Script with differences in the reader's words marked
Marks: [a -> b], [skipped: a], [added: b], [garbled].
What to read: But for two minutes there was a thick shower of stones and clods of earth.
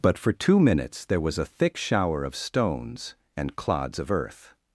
But for two minutes there was a thick shower of stones and clods of earth.